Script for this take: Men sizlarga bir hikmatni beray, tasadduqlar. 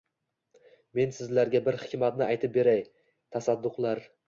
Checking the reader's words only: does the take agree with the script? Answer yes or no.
no